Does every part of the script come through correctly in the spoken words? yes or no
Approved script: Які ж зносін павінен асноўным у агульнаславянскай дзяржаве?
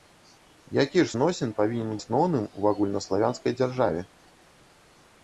yes